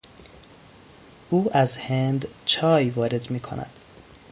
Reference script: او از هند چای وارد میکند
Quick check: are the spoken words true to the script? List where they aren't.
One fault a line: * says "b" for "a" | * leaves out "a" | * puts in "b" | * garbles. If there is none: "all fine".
all fine